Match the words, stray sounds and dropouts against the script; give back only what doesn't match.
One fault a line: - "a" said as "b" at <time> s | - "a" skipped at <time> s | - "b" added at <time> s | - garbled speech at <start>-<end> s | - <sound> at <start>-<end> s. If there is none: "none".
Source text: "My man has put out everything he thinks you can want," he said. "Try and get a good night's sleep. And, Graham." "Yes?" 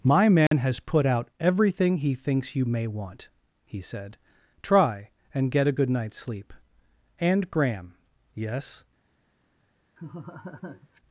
- dropout at 0.5-0.5 s
- "can" said as "may" at 2.6 s
- laugh at 10.0-11.0 s